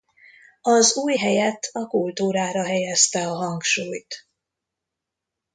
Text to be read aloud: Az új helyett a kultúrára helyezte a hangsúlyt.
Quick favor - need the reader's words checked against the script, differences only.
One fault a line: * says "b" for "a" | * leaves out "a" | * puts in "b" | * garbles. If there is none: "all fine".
all fine